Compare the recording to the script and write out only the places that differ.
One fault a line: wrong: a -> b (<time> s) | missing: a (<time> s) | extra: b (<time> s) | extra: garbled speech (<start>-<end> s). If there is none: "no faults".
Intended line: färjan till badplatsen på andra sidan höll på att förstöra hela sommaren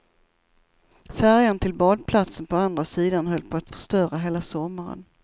no faults